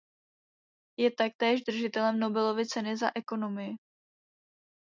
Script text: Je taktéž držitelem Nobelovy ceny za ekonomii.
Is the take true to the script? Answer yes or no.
yes